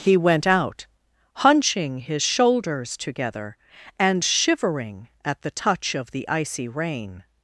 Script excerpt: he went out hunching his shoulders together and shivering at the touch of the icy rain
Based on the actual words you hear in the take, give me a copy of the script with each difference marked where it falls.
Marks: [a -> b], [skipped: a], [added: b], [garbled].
he went out hunching his shoulders together and shivering at the touch of the icy rain